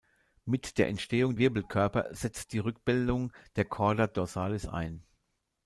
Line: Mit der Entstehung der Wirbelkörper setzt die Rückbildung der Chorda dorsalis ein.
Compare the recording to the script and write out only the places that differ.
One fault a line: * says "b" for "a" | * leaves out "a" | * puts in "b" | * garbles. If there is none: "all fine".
* leaves out "der"